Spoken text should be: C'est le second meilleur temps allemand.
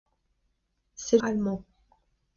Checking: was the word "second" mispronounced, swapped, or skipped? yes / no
yes